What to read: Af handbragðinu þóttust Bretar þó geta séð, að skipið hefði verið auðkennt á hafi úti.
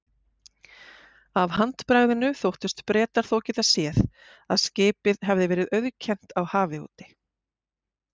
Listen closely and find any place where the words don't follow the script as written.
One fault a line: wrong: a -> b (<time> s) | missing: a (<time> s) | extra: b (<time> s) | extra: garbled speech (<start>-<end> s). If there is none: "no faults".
no faults